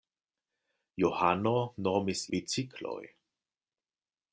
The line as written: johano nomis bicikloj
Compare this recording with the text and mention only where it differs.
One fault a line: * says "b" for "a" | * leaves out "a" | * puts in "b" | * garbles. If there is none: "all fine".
all fine